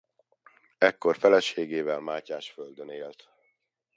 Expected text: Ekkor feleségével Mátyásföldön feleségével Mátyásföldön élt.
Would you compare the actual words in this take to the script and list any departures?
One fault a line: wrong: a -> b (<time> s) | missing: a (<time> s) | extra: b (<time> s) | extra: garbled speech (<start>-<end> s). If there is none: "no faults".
missing: feleségével Mátyásföldön (2.9 s)